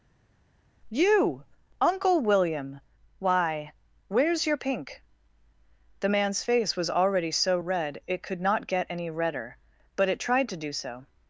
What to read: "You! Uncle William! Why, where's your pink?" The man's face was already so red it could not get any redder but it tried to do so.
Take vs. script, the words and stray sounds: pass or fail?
pass